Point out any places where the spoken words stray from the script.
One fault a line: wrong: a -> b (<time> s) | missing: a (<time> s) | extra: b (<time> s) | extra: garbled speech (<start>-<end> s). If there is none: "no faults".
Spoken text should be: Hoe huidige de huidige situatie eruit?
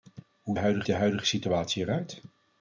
no faults